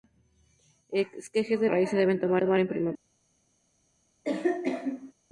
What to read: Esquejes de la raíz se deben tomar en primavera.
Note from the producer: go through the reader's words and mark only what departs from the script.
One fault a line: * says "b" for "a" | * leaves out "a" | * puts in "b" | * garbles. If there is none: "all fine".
* leaves out "la"
* puts in "tomar"